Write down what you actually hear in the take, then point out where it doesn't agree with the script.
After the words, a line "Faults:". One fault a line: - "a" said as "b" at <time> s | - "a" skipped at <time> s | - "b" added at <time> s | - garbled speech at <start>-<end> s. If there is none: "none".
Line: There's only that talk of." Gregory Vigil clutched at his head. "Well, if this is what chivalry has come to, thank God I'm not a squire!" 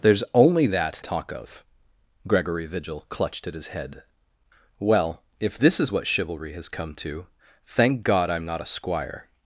There's only that talk of." Gregory Vigil clutched at his head. "Well, if this is what chivalry has come to, thank God I'm not a squire!"
Faults:
none